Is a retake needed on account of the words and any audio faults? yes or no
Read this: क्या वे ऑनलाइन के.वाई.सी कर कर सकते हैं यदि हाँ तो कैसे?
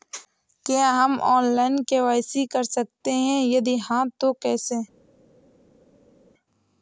yes